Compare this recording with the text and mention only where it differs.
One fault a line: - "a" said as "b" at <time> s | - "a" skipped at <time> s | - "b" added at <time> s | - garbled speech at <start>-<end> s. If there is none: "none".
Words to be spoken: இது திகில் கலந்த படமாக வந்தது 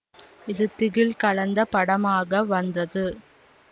none